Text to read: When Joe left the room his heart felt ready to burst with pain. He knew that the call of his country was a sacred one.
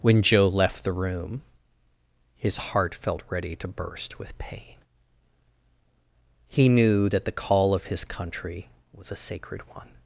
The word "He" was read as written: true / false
true